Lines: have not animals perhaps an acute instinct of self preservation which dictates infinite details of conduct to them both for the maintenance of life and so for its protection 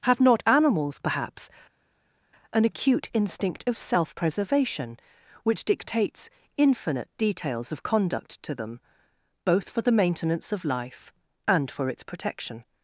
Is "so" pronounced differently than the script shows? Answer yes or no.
yes